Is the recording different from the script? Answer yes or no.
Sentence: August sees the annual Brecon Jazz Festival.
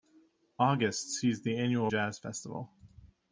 yes